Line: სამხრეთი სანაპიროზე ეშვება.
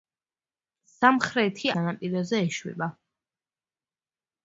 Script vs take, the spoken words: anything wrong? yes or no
no